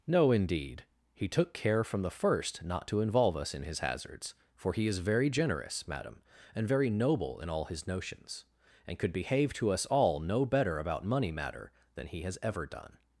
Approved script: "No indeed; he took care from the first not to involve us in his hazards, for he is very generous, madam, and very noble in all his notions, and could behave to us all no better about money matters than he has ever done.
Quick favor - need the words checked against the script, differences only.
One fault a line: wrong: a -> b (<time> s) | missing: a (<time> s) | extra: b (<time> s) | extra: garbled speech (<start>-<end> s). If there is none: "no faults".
wrong: matters -> matter (11.3 s)